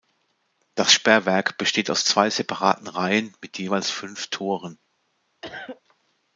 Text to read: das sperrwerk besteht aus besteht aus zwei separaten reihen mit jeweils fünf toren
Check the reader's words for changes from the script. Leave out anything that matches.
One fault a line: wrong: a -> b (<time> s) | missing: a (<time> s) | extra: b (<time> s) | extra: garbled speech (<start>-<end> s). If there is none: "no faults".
missing: besteht aus (2.0 s)